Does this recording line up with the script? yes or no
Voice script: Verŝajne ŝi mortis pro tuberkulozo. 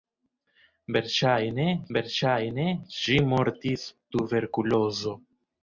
no